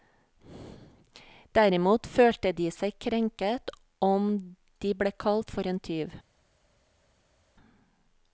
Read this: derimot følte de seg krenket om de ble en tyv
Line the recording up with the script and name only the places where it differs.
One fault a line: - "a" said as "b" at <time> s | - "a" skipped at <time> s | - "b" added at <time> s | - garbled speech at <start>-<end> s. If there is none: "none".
- "kalt for" added at 5.2 s